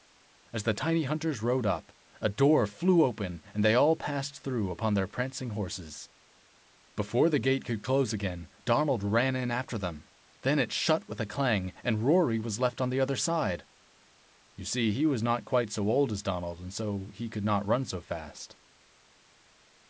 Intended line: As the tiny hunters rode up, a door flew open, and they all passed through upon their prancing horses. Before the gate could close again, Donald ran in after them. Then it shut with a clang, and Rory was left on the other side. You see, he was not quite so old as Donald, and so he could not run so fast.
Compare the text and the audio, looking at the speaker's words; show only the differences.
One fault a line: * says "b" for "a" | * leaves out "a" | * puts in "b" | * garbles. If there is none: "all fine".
all fine